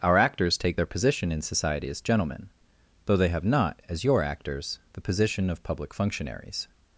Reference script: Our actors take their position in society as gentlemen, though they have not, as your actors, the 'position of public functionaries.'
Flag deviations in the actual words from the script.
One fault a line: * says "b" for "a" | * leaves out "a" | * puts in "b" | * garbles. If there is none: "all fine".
all fine